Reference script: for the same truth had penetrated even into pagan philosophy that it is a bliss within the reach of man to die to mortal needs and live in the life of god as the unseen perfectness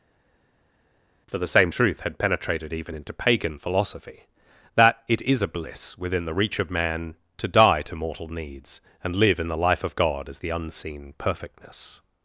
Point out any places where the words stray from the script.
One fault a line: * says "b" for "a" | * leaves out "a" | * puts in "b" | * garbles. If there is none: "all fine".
all fine